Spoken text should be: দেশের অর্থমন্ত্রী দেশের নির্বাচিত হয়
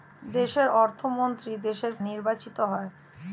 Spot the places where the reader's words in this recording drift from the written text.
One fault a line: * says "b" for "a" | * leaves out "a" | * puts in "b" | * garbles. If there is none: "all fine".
all fine